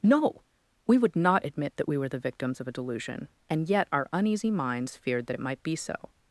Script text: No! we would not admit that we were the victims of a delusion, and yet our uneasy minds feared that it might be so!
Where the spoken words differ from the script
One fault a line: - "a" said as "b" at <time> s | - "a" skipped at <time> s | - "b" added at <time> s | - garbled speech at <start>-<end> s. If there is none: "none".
none